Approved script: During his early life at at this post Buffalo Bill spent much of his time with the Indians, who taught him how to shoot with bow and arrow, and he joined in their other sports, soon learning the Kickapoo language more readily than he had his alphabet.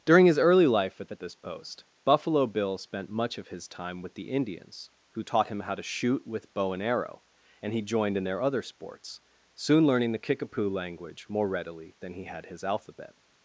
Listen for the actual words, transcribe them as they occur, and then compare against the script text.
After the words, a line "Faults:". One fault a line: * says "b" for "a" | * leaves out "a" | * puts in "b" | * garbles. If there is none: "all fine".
During his early life at at this post Buffalo Bill spent much of his time with the Indians, who taught him how to shoot with bow and arrow, and he joined in their other sports, soon learning the Kickapoo language more readily than he had his alphabet.
Faults:
all fine